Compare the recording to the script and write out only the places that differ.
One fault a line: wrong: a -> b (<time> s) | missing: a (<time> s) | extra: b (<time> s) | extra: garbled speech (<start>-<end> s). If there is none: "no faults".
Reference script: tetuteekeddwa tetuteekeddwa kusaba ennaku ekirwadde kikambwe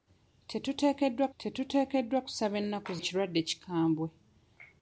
no faults